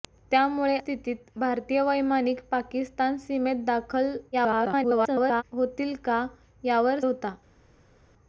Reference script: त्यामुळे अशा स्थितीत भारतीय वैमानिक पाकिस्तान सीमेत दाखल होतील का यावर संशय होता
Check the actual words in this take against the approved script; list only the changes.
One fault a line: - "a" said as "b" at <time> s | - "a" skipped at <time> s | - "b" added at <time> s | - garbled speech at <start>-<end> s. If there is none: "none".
- "अशा" skipped at 0.8 s
- garbled speech at 4.3-5.4 s
- "संशय" skipped at 7.0 s